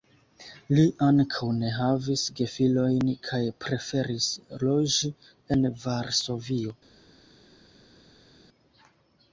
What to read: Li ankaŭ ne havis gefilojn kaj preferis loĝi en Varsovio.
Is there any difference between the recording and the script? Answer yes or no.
no